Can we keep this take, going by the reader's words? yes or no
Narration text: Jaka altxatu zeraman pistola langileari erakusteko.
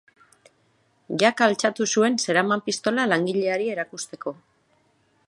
no